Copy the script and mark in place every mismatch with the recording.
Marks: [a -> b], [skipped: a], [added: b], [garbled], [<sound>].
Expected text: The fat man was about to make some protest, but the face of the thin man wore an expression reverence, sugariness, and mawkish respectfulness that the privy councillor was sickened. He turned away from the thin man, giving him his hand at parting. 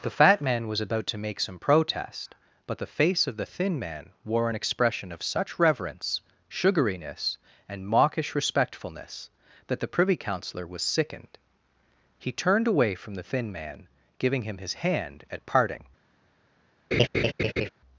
The fat man was about to make some protest, but the face of the thin man wore an expression [added: of such] reverence, sugariness, and mawkish respectfulness that the privy councillor was sickened. He turned away from the thin man, giving him his hand at parting. [laugh]